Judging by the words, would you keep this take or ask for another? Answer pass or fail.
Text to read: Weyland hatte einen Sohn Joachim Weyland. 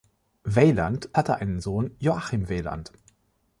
pass